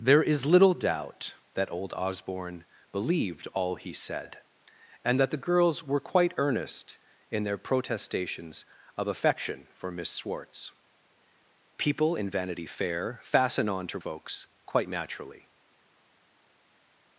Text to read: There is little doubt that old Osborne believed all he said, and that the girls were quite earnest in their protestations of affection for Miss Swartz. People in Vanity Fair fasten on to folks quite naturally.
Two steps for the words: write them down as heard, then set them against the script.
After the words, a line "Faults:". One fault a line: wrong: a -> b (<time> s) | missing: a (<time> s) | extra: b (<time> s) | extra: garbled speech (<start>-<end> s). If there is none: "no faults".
There is little doubt that old Osborne believed all he said, and that the girls were quite earnest in their protestations of affection for Miss Swartz. People in Vanity Fair fasten on to folks quite naturally.
Faults:
no faults